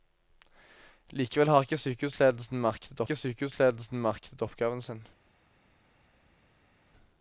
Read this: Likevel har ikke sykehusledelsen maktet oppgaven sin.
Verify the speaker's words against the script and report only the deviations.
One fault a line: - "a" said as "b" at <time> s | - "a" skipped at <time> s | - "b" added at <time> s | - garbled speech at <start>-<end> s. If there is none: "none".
- "ikke sykehusledelsen maktet" added at 3.1 s